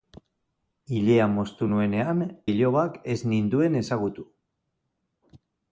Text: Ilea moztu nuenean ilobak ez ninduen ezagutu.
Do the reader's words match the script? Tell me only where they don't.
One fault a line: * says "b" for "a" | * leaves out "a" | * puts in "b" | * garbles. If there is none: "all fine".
all fine